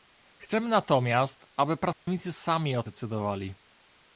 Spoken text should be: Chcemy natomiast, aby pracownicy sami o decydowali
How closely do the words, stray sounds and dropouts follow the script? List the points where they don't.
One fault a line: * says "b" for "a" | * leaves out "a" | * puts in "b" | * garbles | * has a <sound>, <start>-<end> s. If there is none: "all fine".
* has a dropout, 1.9-2.1 s